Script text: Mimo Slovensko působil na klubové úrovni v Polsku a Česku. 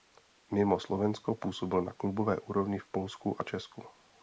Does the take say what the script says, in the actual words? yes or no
yes